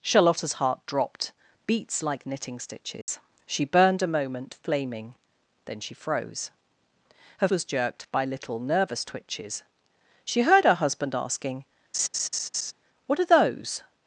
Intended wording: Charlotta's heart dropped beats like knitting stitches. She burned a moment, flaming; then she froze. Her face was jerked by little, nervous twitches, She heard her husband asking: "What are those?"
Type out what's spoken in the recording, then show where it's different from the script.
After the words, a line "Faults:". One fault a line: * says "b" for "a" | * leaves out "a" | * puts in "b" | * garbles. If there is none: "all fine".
Charlotta's heart dropped beats like knitting stitches. She burned a moment, flaming; then she froze. Her was jerked by little, nervous twitches, She heard her husband asking: "What are those?"
Faults:
* leaves out "face"